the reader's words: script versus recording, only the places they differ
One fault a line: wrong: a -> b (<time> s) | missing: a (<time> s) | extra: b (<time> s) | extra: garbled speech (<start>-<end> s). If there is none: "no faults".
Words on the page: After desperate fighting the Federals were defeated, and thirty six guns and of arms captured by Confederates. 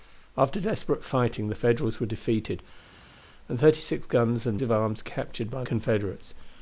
no faults